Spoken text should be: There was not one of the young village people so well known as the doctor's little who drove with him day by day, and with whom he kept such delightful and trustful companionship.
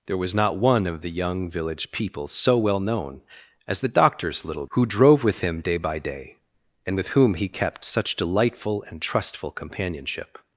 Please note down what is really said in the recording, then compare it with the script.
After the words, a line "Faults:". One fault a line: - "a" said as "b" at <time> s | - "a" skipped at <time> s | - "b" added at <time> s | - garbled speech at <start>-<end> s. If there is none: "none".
There was not one of the young village people so well known as the doctor's little who drove with him day by day, and with whom he kept such delightful and trustful companionship.
Faults:
none